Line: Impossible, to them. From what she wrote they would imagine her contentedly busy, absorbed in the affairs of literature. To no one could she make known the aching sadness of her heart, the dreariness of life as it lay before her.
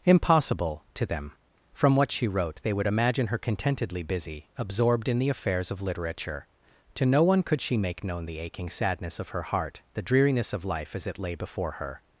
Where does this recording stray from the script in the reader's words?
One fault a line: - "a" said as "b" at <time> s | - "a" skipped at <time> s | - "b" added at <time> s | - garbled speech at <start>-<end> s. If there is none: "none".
none